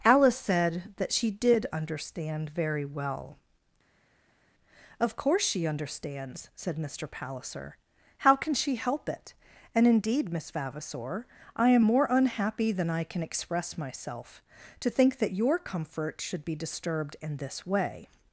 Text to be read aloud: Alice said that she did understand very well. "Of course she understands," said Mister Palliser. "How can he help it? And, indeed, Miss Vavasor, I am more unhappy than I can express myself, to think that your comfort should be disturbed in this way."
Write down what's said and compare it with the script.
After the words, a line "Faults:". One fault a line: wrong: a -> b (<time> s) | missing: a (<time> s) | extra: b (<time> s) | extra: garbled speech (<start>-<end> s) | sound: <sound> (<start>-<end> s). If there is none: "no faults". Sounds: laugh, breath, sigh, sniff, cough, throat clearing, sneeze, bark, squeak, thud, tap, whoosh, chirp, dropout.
Alice said that she did understand very well. "Of course she understands," said Mister Palliser. "How can she help it? And, indeed, Miss Vavasor, I am more unhappy than I can express myself, to think that your comfort should be disturbed in this way."
Faults:
wrong: he -> she (8.5 s)